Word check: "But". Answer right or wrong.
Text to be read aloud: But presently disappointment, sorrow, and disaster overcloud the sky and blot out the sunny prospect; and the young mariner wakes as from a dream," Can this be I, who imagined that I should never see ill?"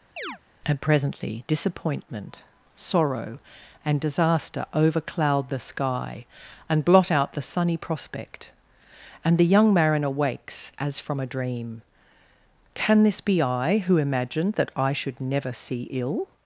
wrong